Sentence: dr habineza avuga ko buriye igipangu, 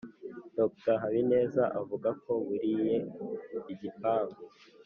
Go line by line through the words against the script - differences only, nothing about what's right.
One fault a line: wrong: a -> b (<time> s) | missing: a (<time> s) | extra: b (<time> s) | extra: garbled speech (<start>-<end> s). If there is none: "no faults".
no faults